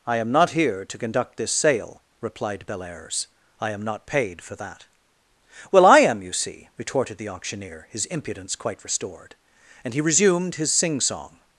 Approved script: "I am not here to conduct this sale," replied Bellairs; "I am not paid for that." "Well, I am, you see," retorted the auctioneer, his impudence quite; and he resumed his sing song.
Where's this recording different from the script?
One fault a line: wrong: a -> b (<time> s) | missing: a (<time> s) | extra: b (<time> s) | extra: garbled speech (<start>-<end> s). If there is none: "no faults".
extra: restored (8.8 s)